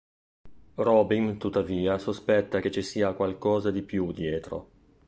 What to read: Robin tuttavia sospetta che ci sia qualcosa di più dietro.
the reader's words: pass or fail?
pass